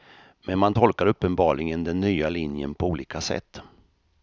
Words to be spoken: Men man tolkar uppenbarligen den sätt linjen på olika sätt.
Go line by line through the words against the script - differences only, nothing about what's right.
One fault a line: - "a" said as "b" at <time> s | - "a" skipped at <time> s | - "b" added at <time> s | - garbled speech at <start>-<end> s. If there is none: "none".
- "sätt" said as "nya" at 2.0 s